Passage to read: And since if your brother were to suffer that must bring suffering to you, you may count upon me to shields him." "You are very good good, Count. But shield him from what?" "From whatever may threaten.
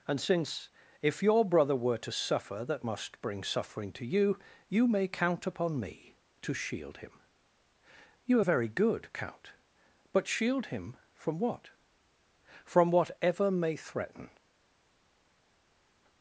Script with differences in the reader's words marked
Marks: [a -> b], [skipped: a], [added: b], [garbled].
And since if your brother were to suffer that must bring suffering to you, you may count upon me to [shields -> shield] him." "You are very good [skipped: good,] Count. But shield him from what?" "From whatever may threaten.